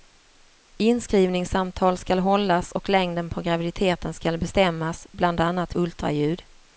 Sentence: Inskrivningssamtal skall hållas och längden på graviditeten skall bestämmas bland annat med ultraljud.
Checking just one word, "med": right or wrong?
wrong